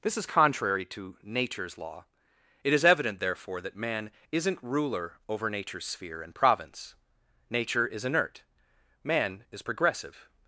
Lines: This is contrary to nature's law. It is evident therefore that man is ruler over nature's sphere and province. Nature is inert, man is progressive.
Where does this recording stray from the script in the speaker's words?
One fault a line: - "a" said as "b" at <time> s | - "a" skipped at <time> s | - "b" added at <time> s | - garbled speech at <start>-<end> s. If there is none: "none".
- "is" said as "isn't" at 4.3 s